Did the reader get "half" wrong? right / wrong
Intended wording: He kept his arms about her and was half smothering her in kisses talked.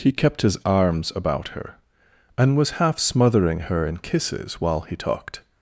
right